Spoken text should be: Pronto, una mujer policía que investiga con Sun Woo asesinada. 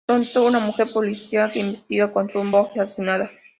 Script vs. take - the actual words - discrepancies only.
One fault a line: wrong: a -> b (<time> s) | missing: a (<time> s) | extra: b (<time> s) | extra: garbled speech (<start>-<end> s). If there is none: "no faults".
no faults